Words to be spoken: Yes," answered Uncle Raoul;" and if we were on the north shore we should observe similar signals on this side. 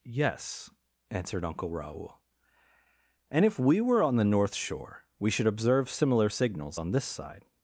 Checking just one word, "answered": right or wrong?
right